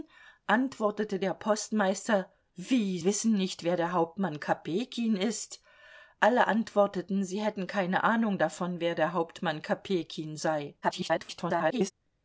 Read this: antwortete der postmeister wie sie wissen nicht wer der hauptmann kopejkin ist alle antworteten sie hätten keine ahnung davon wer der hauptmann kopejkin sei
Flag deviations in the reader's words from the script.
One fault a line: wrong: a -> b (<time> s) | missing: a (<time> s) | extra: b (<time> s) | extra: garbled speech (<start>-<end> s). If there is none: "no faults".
missing: sie (3.0 s)
extra: garbled speech (10.8-11.9 s)